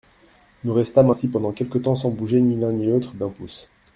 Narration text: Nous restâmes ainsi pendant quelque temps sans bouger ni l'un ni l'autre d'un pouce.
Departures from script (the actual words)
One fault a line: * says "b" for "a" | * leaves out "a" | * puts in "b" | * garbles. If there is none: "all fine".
all fine